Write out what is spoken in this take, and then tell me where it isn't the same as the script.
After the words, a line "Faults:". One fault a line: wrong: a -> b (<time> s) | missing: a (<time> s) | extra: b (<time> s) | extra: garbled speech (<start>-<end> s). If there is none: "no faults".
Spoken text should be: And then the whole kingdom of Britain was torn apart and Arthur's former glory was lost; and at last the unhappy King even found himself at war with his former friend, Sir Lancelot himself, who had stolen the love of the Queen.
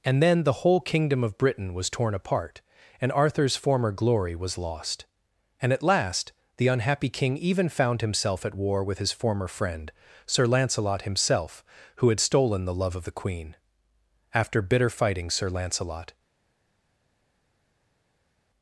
And then the whole kingdom of Britain was torn apart and Arthur's former glory was lost; and at last the unhappy King even found himself at war with his former friend, Sir Lancelot himself, who had stolen the love of the Queen. After bitter fighting Sir Lancelot
Faults:
extra: After bitter fighting Sir Lancelot (14.3 s)